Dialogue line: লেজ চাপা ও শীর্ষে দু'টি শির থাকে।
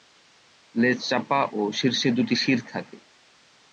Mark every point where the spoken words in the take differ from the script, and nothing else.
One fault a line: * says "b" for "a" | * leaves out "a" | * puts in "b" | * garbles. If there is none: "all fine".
all fine